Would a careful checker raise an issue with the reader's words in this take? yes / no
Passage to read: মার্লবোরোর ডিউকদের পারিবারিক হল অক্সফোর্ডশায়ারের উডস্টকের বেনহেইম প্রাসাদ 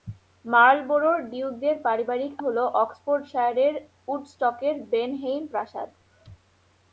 no